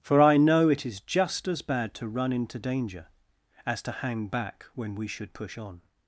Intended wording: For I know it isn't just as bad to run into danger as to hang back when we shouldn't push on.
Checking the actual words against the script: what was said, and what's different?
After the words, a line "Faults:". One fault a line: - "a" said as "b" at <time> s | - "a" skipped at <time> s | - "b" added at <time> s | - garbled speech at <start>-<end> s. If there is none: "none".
For I know it is just as bad to run into danger as to hang back when we should push on.
Faults:
- "isn't" said as "is" at 0.8 s
- "shouldn't" said as "should" at 5.1 s